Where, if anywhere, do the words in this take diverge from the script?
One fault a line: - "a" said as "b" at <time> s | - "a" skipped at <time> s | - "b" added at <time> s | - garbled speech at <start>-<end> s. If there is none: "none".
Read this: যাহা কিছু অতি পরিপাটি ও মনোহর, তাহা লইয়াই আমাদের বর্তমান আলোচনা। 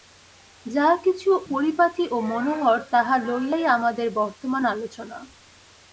- "অতি" skipped at 1.3 s